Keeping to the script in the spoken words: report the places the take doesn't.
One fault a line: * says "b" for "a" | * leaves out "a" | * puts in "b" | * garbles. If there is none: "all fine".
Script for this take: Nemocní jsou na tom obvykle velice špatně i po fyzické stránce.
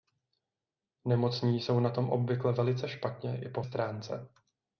* leaves out "fyzické"